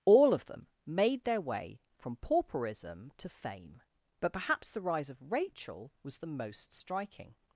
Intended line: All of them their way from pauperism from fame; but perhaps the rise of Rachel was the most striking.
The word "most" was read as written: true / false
true